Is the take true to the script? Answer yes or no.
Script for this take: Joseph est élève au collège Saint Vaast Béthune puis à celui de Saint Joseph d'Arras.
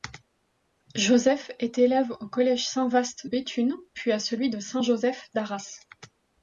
yes